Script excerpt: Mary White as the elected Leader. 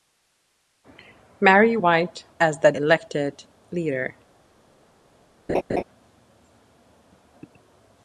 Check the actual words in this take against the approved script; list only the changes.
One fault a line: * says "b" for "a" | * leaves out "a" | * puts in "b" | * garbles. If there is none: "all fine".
all fine